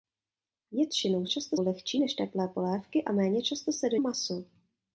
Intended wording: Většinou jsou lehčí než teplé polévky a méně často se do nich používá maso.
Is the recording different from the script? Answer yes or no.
yes